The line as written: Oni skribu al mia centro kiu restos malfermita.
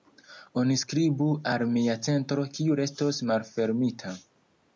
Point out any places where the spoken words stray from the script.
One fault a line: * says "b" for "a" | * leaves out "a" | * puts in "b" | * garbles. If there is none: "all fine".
all fine